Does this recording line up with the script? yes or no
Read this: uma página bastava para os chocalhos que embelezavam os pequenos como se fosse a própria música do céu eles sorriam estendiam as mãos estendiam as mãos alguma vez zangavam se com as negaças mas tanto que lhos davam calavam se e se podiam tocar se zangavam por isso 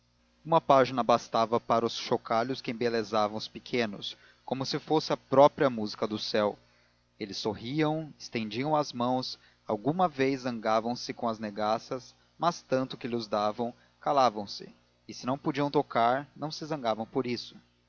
no